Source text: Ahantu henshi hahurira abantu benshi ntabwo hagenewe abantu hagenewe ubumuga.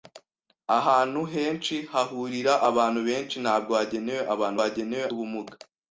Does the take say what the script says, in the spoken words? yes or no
yes